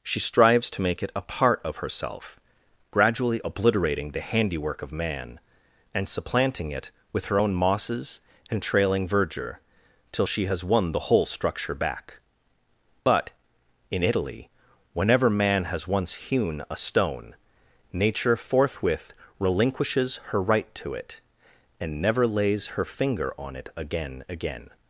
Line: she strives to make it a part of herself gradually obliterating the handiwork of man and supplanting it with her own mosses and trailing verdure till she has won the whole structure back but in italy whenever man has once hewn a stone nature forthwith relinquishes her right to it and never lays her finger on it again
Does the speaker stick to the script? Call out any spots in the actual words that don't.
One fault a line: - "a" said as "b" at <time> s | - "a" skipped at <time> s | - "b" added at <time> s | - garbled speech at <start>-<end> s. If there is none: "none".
- "again" added at 24.3 s